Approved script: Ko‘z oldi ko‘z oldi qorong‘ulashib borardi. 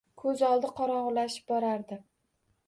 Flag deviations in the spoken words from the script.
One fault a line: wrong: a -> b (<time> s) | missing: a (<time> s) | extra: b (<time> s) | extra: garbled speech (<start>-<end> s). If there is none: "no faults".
missing: ko‘z oldi (0.7 s)